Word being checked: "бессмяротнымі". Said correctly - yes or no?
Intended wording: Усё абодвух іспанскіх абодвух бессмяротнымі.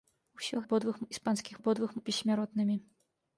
yes